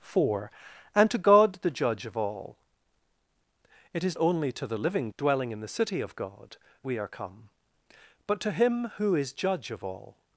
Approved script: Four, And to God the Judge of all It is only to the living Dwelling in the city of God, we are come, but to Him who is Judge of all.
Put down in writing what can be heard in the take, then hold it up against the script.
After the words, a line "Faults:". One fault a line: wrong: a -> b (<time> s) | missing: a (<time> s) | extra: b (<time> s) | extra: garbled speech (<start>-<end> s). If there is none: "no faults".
Four, And to God the Judge of all It is only to the living Dwelling in the city of God, we are come, but to Him who is Judge of all.
Faults:
no faults